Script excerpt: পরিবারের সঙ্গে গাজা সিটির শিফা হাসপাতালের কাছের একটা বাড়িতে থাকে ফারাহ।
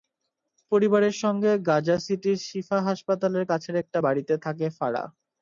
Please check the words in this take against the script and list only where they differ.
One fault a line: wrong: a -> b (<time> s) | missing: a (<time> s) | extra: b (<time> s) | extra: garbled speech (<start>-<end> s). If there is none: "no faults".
no faults